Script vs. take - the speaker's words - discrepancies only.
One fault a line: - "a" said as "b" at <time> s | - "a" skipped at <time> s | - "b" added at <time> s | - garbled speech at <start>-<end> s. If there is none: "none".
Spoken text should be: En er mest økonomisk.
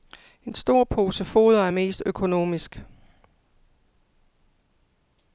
- "stor pose foder" added at 0.5 s